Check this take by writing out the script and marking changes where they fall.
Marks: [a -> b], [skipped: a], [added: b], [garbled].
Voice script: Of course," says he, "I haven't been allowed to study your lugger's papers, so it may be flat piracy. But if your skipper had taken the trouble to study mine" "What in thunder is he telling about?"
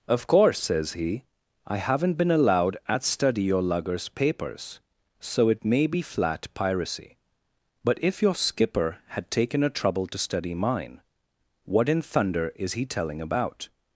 Of course," says he, "I haven't been allowed [to -> at] study your lugger's papers, so it may be flat piracy. But if your skipper had taken [the -> a] trouble to study mine" "What in thunder is he telling about?"